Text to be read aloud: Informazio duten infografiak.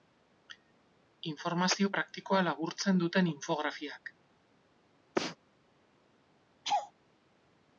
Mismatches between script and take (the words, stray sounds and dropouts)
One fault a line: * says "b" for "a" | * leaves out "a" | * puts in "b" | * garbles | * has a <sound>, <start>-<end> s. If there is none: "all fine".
* puts in "praktikoa laburtzen"
* has a sneeze, 5.2-5.4 s
* has a laugh, 6.6-6.9 s